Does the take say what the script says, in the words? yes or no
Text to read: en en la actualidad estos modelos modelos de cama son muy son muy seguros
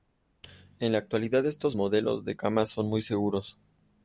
no